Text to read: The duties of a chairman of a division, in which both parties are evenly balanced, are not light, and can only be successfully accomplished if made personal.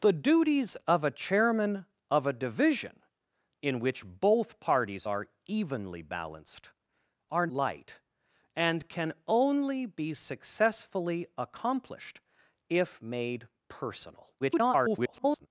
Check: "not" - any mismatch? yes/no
yes